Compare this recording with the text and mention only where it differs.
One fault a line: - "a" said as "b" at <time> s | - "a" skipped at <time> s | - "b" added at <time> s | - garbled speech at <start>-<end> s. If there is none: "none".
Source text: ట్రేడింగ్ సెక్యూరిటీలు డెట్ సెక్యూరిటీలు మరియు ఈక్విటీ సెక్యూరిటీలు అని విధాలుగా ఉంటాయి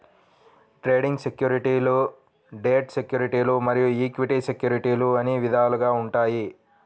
none